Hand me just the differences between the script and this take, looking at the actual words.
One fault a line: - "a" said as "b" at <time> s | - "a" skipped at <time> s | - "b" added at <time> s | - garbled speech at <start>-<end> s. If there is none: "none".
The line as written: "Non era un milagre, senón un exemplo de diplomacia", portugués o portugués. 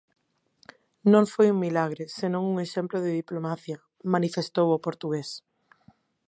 - "era" said as "foi" at 1.3 s
- "portugués" said as "manifestou" at 4.1 s